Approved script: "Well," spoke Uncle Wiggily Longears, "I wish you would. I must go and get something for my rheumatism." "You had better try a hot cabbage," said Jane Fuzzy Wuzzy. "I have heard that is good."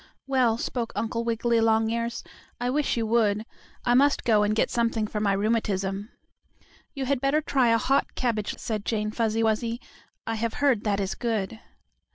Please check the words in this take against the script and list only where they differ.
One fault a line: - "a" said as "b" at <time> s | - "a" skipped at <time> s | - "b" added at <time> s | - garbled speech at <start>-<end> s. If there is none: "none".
none